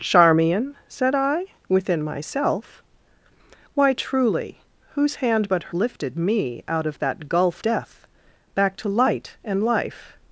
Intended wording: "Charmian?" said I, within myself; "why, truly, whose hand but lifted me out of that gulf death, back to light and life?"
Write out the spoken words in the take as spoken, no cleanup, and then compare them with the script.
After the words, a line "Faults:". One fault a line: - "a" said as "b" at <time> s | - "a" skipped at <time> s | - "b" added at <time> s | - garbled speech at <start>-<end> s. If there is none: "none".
"Charmian?" said I, within myself; "why, truly, whose hand but lifted me out of that gulf death, back to light and life?"
Faults:
none